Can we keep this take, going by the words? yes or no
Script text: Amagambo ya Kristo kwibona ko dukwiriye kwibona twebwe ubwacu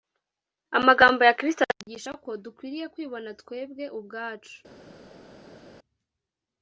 no